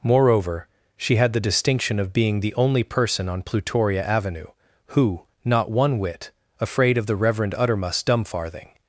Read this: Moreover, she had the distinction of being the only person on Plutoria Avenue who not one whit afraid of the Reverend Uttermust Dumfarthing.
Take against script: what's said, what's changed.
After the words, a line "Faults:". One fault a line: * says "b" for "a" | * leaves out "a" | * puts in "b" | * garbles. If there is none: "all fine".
Moreover, she had the distinction of being the only person on Plutoria Avenue who not one whit afraid of the Reverend Uttermust Dumfarthing.
Faults:
all fine